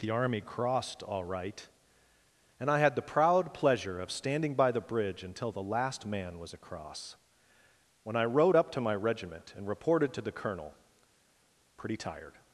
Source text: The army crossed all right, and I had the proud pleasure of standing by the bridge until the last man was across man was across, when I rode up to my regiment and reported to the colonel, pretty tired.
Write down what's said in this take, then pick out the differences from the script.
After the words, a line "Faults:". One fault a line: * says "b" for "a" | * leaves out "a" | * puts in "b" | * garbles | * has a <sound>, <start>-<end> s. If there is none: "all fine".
The army crossed all right, and I had the proud pleasure of standing by the bridge until the last man was across, when I rode up to my regiment and reported to the colonel, pretty tired.
Faults:
* leaves out "man was across"